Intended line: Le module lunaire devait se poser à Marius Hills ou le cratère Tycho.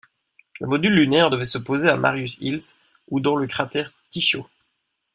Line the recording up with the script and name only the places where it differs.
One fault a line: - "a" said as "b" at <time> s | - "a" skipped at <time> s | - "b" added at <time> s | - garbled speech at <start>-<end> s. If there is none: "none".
- "dans" added at 3.2 s